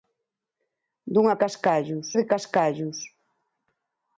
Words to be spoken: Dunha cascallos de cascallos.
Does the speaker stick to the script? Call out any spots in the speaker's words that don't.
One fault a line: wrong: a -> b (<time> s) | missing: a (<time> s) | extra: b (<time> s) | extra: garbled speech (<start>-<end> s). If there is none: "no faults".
no faults